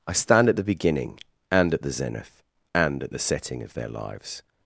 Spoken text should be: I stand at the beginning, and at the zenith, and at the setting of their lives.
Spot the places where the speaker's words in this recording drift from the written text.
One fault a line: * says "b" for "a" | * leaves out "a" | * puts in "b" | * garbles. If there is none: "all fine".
all fine